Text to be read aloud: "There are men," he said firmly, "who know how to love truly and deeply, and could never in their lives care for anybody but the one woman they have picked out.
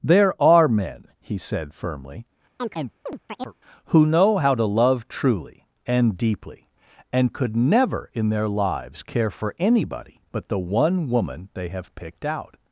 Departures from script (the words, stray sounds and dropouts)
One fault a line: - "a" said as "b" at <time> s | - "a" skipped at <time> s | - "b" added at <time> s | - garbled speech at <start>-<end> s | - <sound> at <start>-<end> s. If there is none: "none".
- chirp at 2.6-3.5 s